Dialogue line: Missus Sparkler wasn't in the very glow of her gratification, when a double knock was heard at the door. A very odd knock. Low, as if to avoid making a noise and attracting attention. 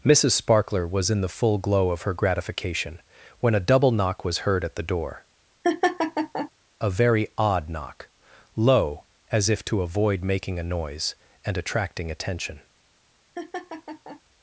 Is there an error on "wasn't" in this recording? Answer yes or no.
yes